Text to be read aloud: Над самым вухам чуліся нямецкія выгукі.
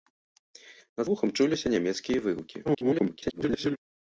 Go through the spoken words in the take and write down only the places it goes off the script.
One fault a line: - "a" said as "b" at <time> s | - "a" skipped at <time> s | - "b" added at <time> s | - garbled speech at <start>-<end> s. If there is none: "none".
- "самым" skipped at 1.1 s
- garbled speech at 2.7-3.8 s